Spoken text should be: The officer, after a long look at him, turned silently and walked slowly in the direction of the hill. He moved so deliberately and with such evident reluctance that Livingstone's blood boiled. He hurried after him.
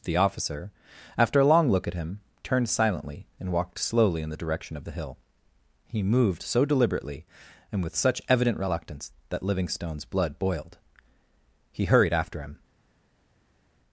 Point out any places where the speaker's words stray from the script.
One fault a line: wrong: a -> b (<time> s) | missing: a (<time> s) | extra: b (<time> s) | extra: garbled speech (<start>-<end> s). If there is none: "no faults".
no faults